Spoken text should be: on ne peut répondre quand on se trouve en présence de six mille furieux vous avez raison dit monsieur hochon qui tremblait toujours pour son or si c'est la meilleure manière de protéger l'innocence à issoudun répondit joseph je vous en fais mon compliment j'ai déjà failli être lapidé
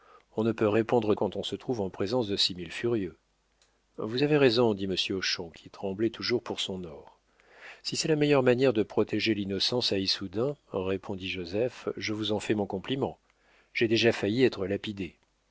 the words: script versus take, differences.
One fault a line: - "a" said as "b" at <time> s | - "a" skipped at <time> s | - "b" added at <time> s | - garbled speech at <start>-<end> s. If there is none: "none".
none